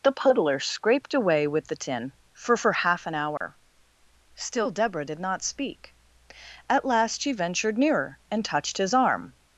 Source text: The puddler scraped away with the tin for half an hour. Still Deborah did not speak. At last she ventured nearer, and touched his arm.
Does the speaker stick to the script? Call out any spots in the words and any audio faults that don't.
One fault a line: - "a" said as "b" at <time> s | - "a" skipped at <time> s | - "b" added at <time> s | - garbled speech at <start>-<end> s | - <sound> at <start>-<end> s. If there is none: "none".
- "for" added at 2.6 s
- dropout at 3.4-3.4 s